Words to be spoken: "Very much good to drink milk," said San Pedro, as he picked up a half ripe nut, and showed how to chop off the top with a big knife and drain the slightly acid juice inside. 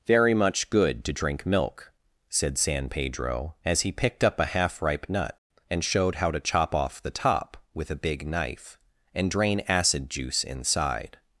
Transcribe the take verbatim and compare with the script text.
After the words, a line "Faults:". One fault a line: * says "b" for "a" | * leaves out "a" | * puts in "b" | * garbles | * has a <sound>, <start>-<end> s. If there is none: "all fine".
"Very much good to drink milk," said San Pedro, as he picked up a half ripe nut, and showed how to chop off the top with a big knife and drain acid juice inside.
Faults:
* leaves out "the slightly"